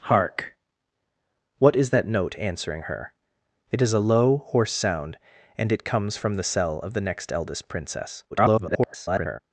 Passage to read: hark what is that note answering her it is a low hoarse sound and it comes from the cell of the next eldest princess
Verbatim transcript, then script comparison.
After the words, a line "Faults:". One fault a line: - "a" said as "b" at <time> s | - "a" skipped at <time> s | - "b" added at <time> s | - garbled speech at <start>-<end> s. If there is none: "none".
hark what is that note answering her it is a low hoarse sound and it comes from the cell of the next eldest princess [garbled]
Faults:
- garbled speech at 8.3-9.4 s